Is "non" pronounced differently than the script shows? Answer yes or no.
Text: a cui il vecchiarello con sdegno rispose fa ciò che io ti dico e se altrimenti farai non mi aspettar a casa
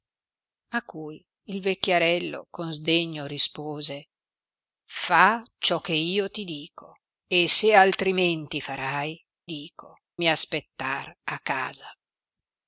yes